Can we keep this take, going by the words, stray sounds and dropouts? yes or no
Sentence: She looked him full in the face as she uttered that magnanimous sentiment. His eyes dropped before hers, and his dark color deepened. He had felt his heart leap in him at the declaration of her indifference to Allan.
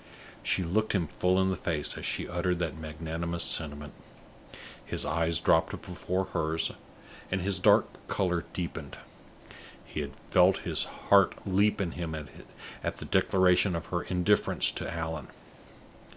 yes